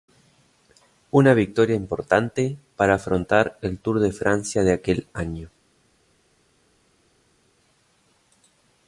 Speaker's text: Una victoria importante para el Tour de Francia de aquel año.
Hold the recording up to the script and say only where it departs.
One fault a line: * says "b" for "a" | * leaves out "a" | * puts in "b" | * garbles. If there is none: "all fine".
* puts in "afrontar"